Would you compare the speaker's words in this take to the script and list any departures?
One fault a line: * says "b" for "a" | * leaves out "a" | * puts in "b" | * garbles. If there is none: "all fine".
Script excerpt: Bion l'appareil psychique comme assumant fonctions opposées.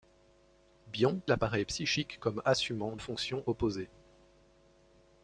all fine